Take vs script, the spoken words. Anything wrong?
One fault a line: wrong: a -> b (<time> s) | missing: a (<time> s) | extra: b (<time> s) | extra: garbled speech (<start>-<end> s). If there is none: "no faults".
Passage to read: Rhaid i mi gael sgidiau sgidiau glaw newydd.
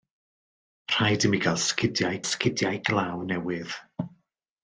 no faults